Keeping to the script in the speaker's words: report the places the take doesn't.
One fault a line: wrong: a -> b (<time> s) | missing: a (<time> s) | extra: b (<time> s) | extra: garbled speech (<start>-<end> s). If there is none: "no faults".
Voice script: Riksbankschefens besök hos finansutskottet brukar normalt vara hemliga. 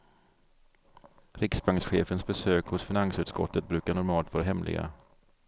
no faults